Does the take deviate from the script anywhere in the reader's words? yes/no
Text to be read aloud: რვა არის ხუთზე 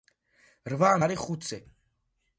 no